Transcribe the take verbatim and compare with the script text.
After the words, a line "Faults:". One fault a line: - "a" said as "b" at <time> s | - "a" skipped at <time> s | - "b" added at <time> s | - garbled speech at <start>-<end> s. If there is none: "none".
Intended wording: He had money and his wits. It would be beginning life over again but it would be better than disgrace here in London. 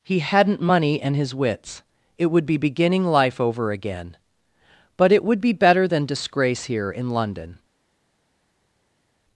He hadn't money and his wits. It would be beginning life over again but it would be better than disgrace here in London.
Faults:
- "had" said as "hadn't" at 0.2 s